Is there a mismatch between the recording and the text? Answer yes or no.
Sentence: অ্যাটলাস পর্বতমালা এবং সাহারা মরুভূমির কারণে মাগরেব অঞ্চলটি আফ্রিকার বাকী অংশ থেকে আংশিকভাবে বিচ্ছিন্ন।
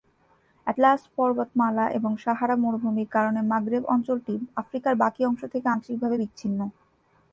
no